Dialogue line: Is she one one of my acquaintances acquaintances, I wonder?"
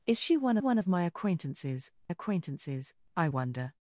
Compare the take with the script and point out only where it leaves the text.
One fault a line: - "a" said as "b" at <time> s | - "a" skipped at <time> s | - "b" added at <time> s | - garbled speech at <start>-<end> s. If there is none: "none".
none